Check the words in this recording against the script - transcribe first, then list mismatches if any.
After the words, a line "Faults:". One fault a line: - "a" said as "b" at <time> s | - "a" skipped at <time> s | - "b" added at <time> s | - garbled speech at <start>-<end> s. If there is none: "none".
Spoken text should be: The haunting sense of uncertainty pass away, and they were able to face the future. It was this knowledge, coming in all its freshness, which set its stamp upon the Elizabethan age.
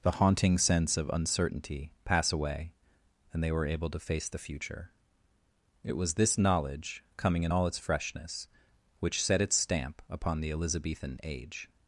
The haunting sense of uncertainty pass away, and they were able to face the future. It was this knowledge, coming in all its freshness, which set its stamp upon the Elizabethan age.
Faults:
none